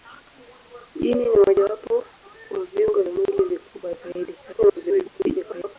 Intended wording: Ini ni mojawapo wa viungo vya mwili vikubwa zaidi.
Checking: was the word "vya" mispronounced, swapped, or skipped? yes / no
yes